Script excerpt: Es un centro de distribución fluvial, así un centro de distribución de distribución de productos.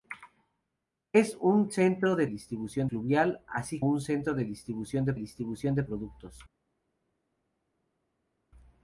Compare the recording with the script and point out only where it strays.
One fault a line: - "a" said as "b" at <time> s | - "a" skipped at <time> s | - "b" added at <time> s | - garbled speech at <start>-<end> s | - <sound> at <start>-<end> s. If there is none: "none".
none